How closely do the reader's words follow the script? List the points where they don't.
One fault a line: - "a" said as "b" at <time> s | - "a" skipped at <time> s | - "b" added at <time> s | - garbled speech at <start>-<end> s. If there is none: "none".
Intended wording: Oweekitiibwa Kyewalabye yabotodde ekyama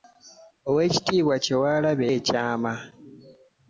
- "yabotodde" skipped at 2.1 s